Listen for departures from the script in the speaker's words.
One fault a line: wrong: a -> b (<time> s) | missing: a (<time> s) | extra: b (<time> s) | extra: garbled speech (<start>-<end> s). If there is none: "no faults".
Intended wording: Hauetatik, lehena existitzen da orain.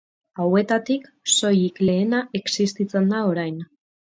extra: soilik (1.3 s)